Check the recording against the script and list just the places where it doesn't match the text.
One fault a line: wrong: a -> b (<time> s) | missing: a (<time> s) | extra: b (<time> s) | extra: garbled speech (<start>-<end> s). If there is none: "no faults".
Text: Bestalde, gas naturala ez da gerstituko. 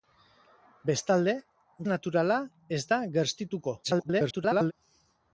missing: gas (1.4 s)
extra: garbled speech (3.8-4.7 s)